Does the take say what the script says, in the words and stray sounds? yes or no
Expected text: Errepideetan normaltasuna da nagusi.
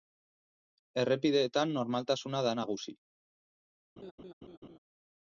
no